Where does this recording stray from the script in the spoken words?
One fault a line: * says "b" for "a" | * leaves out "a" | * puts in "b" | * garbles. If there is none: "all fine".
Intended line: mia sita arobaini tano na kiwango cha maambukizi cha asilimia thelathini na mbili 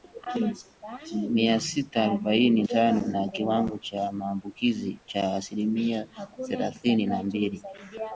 all fine